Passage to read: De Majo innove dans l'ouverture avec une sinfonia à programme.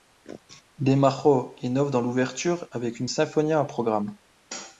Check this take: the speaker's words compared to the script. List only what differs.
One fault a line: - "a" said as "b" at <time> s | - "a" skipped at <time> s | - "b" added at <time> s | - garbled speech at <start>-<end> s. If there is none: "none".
none